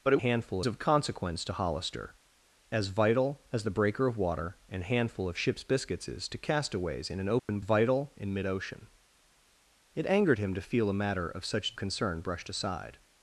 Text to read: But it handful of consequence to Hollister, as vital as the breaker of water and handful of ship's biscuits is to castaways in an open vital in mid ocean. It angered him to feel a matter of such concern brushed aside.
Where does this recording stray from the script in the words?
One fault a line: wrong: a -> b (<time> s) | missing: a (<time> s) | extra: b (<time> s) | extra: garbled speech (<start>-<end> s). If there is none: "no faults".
no faults